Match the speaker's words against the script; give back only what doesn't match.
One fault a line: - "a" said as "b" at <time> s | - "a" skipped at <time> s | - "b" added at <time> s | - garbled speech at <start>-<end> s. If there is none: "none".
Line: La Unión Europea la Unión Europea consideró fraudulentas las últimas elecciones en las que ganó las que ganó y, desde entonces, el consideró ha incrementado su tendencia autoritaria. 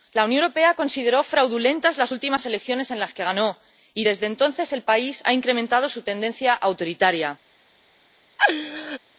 - "la Unión Europea" skipped at 0.7 s
- "las que ganó" skipped at 3.6 s
- "consideró" said as "país" at 4.8 s